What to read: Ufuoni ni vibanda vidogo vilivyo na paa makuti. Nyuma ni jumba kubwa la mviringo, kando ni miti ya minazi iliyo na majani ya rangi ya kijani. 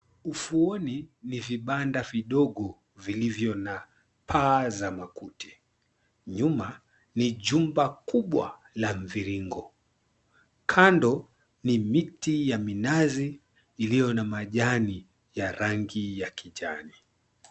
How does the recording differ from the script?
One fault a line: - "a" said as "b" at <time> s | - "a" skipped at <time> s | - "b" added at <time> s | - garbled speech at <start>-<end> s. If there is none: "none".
- "za" added at 4.7 s